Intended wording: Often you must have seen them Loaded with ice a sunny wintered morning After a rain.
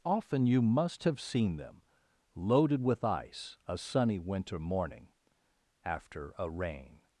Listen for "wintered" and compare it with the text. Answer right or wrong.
wrong